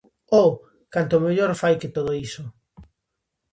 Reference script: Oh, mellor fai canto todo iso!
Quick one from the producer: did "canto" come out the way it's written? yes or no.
no